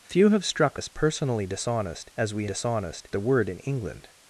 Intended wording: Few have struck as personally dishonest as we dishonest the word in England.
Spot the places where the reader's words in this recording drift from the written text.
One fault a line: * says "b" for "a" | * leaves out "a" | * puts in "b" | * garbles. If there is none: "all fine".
all fine